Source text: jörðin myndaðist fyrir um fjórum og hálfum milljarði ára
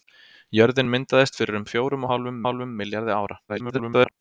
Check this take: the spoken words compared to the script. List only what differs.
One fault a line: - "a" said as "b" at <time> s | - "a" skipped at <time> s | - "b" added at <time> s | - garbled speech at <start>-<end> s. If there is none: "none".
- "hálfum" added at 2.5 s
- garbled speech at 3.5-4.1 s